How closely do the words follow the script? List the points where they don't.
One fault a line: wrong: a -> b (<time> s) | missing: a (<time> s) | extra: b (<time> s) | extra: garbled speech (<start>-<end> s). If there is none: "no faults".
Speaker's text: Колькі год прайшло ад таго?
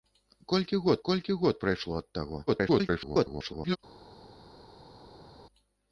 extra: колькі год (1.1 s)
extra: garbled speech (2.5-3.8 s)